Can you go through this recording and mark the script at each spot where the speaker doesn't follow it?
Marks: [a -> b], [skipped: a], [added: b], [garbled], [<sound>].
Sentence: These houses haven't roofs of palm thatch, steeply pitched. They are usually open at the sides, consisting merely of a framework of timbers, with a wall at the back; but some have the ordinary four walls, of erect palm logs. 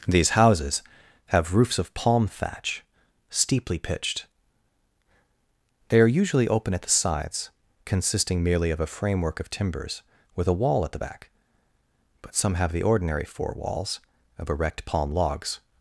These houses [haven't -> have] roofs of palm thatch, steeply pitched. They are usually open at the sides, consisting merely of a framework of timbers, with a wall at the back; but some have the ordinary four walls, of erect palm logs.